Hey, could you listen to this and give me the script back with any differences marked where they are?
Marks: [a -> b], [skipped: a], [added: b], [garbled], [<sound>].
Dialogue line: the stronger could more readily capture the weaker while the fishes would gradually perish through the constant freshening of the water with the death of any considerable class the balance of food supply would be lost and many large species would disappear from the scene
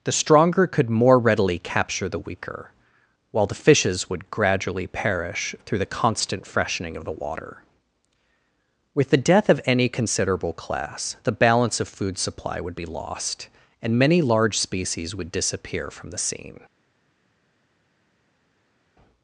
the stronger could more readily capture the weaker while the fishes would gradually perish through the constant freshening of the water with the death of any considerable class the balance of food supply would be lost and many large species would disappear from the scene